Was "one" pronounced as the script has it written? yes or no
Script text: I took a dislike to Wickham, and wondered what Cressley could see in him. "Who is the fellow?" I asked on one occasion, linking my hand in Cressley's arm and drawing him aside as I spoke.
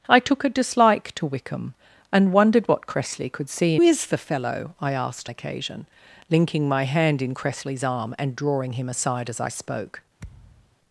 no